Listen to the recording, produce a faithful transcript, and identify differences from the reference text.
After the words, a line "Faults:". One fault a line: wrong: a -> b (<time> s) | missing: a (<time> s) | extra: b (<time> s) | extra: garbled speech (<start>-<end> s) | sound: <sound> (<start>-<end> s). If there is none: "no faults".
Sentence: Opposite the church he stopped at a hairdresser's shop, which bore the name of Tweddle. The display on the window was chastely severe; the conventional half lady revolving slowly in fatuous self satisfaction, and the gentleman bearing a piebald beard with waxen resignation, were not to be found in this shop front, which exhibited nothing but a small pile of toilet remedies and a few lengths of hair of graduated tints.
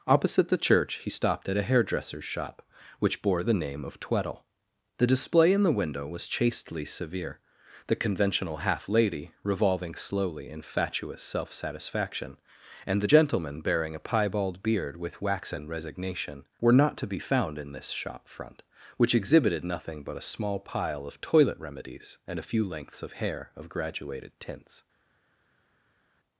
Opposite the church he stopped at a hairdresser's shop, which bore the name of Tweddle. The display in the window was chastely severe; the conventional half lady revolving slowly in fatuous self satisfaction, and the gentleman bearing a piebald beard with waxen resignation, were not to be found in this shop front, which exhibited nothing but a small pile of toilet remedies and a few lengths of hair of graduated tints.
Faults:
wrong: on -> in (5.5 s)